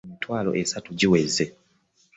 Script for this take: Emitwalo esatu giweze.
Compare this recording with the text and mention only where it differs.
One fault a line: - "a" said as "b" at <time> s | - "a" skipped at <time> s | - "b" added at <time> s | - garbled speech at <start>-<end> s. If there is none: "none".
none